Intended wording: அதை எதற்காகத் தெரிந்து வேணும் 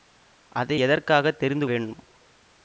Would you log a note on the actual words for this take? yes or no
no